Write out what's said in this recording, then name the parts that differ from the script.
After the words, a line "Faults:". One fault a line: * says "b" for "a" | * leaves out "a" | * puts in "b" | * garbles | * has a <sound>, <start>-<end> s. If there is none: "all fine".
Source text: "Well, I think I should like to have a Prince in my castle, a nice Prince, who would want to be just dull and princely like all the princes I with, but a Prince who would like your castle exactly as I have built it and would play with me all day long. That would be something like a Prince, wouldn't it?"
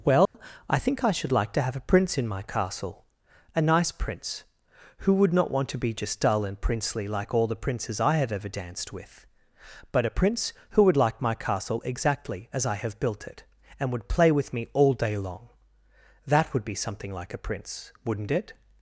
"Well, I think I should like to have a Prince in my castle, a nice Prince, who would not want to be just dull and princely like all the princes I have ever danced with, but a Prince who would like my castle exactly as I have built it and would play with me all day long. That would be something like a Prince, wouldn't it?"
Faults:
* has a dropout, 0.3-0.3 s
* puts in "not"
* puts in "have ever danced"
* says "my" for "your"